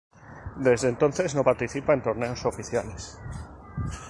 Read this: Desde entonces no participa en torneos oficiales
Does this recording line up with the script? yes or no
yes